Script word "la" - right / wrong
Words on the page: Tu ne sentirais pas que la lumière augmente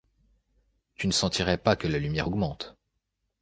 right